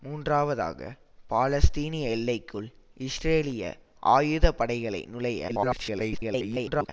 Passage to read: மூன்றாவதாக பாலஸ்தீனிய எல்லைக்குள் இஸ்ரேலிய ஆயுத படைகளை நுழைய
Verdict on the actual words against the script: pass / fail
fail